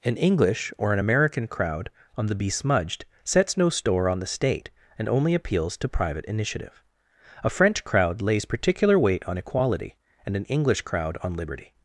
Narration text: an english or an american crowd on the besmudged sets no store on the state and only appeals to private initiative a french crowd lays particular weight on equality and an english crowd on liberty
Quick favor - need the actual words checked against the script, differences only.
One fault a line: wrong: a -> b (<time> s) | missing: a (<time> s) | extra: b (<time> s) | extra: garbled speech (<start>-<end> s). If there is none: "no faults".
no faults